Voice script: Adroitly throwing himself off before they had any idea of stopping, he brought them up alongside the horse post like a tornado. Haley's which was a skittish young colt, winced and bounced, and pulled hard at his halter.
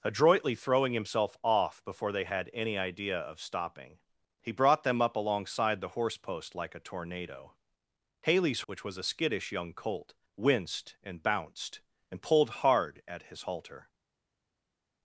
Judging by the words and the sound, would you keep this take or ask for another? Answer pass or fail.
pass